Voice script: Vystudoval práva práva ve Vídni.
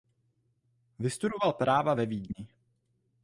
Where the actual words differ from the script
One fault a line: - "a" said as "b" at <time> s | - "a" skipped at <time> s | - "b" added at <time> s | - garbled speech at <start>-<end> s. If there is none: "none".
- "práva" skipped at 1.9 s